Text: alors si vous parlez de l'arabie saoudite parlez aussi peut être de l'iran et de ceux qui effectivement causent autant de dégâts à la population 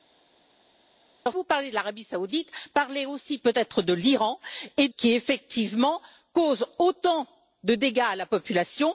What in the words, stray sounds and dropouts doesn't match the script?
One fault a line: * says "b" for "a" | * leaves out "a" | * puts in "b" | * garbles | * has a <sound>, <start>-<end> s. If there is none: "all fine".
* leaves out "si"
* leaves out "de ceux"